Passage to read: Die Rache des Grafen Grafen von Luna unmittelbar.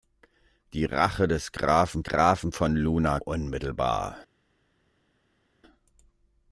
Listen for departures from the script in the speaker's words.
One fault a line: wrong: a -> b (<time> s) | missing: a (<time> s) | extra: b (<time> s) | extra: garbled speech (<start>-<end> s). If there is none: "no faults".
no faults